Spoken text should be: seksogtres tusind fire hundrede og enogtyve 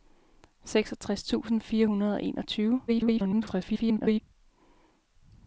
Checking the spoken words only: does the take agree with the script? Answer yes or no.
no